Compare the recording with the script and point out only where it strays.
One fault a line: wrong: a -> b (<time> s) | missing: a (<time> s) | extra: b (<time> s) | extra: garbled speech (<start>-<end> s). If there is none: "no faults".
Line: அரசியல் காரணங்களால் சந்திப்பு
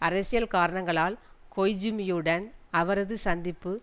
extra: கொய்ஜூமியுடன் அவரது (1.6 s)